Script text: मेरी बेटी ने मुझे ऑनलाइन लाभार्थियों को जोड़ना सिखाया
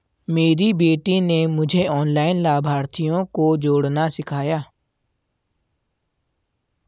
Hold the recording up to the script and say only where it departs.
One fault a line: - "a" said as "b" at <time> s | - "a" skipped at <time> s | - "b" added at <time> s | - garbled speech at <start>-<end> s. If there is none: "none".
none